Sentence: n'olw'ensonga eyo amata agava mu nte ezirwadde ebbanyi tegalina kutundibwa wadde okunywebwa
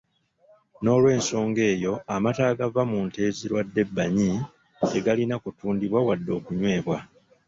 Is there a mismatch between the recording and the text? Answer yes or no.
no